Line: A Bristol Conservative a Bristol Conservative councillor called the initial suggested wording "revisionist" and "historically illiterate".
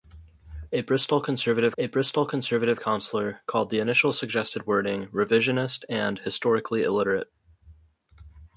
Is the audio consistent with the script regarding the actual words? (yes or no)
yes